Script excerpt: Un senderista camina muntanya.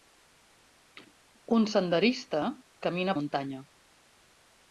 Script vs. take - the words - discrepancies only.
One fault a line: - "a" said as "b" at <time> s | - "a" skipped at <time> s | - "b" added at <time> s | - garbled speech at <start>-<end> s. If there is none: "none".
none